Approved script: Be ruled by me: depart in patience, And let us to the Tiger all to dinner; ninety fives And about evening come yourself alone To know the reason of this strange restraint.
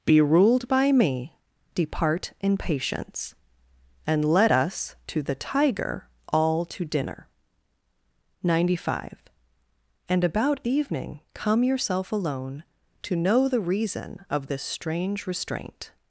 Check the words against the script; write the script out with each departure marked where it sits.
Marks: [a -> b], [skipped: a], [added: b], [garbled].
Be ruled by me: depart in patience, And let us to the Tiger all to dinner; ninety [fives -> five] And about evening come yourself alone To know the reason of this strange restraint.